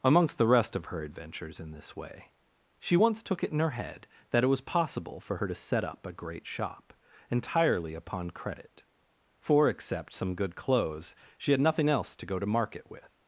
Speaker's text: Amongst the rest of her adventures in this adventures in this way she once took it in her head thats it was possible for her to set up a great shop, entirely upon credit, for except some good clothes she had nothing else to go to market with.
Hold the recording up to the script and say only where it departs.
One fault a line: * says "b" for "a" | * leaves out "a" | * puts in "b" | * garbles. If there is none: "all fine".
* leaves out "adventures in this"
* says "that" for "thats"